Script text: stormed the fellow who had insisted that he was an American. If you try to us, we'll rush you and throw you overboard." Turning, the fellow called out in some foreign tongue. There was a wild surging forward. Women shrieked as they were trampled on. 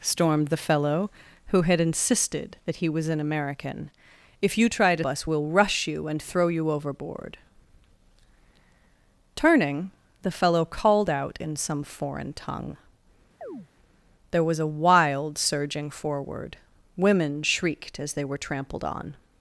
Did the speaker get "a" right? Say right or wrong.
right